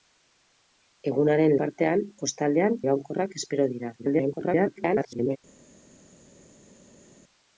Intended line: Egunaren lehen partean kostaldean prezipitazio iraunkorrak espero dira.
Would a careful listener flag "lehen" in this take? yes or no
yes